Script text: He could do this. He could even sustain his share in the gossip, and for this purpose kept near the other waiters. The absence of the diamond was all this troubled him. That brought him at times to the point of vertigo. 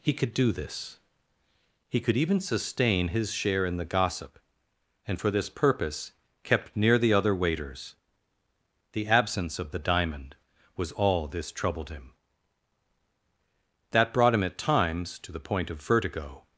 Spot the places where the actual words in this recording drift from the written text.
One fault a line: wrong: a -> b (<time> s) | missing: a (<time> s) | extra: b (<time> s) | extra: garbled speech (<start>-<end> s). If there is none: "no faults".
no faults